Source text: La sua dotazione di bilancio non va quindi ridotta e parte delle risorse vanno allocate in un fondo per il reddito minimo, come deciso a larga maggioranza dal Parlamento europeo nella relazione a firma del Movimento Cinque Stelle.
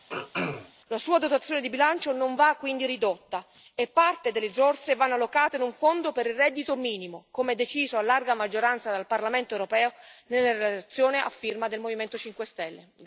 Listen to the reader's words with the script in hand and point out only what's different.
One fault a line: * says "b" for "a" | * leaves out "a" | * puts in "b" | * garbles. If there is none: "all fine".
all fine